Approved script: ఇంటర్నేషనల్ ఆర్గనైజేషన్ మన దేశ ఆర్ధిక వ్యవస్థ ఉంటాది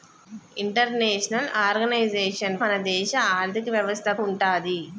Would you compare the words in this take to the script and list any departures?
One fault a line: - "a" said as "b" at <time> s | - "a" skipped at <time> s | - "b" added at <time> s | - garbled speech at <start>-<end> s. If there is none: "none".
none